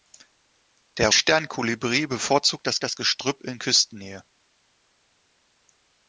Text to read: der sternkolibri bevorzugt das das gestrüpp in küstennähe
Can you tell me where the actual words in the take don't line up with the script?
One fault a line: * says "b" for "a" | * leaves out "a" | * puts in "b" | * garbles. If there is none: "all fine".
all fine